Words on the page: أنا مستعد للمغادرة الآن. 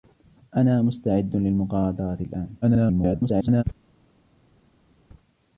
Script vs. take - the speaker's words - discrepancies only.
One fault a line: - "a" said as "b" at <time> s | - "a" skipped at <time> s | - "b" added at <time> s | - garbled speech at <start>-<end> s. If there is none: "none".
- garbled speech at 2.6-3.6 s